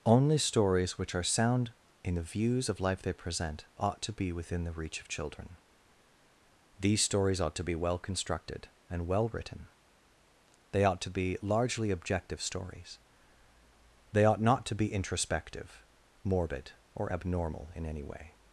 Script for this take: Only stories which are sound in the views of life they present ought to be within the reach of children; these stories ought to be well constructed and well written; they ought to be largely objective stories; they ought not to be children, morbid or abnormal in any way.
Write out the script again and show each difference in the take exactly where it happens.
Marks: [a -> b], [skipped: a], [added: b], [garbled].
Only stories which are sound in the views of life they present ought to be within the reach of children; these stories ought to be well constructed and well written; they ought to be largely objective stories; they ought not to be [children, -> introspective] morbid or abnormal in any way.